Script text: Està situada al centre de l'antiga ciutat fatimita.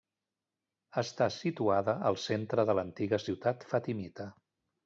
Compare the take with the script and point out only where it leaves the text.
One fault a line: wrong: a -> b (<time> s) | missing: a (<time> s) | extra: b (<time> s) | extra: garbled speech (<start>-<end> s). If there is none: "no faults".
no faults